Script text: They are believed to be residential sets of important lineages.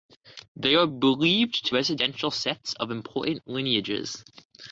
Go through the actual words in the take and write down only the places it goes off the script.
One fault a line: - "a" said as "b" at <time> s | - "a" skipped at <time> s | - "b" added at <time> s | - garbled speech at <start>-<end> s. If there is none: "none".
- "be" skipped at 1.7 s